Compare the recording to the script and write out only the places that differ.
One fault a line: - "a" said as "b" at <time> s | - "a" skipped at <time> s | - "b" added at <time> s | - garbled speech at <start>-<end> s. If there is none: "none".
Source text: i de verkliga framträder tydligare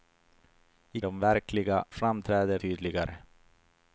none